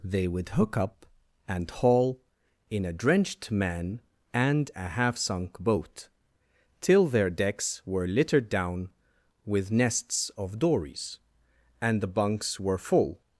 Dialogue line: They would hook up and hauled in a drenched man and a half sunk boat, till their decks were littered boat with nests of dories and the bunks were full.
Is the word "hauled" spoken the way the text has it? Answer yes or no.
no